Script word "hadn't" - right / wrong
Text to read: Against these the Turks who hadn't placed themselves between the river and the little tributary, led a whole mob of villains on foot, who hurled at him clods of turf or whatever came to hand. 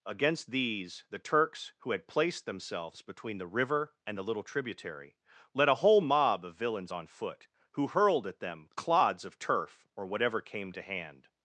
wrong